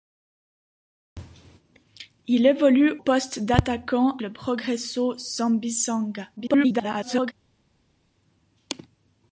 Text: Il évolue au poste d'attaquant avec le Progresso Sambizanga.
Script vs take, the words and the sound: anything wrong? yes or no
yes